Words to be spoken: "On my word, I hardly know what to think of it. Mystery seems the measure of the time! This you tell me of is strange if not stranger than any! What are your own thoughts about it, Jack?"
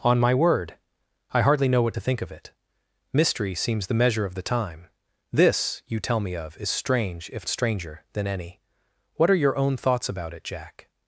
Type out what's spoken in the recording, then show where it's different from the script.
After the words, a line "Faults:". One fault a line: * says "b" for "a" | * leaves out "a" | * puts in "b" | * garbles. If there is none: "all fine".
"On my word, I hardly know what to think of it. Mystery seems the measure of the time! This you tell me of is strange if stranger than any! What are your own thoughts about it, Jack?"
Faults:
* leaves out "not"